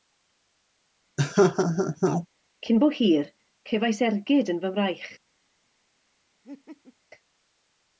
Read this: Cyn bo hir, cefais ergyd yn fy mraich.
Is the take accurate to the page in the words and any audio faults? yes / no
no